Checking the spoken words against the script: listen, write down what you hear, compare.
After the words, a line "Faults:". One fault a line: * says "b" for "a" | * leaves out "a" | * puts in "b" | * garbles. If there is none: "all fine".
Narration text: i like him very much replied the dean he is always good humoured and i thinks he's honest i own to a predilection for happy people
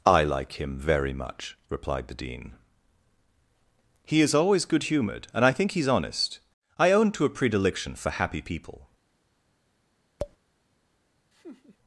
i like him very much replied the dean he is always good humoured and i think he's honest i own to a predilection for happy people
Faults:
* says "think" for "thinks"